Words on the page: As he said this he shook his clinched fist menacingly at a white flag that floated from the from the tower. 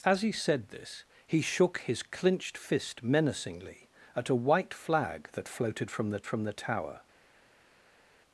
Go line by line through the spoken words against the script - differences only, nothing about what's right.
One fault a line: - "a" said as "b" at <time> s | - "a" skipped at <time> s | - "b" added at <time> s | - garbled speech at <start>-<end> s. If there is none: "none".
none